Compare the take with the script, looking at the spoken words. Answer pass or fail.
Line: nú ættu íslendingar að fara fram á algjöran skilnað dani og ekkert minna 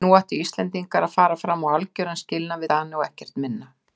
pass